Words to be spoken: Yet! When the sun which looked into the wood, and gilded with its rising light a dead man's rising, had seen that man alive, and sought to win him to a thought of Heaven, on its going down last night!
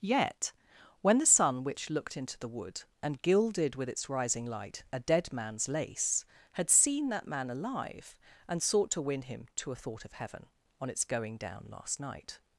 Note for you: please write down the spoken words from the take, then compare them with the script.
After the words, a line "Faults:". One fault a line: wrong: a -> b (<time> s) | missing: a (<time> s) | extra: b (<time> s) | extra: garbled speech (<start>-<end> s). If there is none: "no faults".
Yet! When the sun which looked into the wood, and gilded with its rising light a dead man's lace, had seen that man alive, and sought to win him to a thought of Heaven, on its going down last night!
Faults:
wrong: rising -> lace (5.7 s)